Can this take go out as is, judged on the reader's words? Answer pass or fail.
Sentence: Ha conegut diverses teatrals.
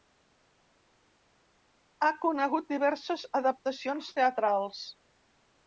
fail